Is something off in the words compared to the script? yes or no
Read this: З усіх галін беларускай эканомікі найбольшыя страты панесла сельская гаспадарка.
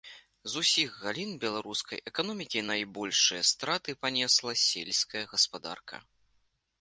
no